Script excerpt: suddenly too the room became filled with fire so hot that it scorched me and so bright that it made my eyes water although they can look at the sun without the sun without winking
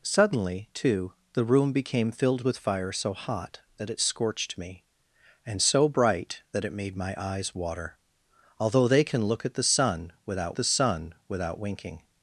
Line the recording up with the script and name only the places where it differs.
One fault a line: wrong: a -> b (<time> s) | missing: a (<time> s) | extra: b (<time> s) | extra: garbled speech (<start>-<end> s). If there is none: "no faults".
no faults